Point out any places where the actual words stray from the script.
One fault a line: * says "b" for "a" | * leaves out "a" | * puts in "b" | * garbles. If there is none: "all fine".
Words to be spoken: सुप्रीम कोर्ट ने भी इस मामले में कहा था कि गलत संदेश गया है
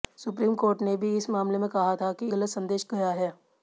all fine